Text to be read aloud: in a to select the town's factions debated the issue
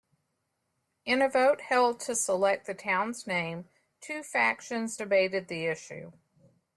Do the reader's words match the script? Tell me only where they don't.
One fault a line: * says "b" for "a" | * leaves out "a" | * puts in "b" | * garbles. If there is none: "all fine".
* puts in "vote held"
* puts in "name two"